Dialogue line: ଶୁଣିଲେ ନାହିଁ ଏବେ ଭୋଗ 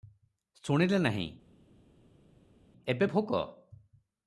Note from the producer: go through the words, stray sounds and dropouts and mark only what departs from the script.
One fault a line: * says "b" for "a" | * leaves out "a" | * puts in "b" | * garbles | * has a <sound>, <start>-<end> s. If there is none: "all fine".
all fine